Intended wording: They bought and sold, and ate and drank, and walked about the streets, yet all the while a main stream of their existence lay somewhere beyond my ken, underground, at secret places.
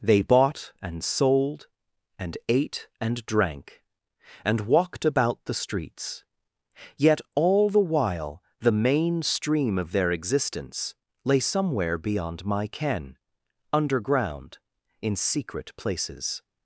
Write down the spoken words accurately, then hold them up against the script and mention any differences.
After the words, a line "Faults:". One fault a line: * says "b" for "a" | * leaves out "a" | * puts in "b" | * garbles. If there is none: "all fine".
They bought and sold, and ate and drank, and walked about the streets, yet all the while the main stream of their existence lay somewhere beyond my ken, underground, in secret places.
Faults:
* says "the" for "a"
* says "in" for "at"